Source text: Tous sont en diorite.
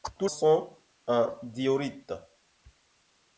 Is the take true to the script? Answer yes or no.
yes